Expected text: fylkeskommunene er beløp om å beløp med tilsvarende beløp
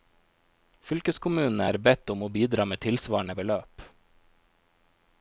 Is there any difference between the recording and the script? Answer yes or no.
yes